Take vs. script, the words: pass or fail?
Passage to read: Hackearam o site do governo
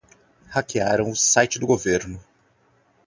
pass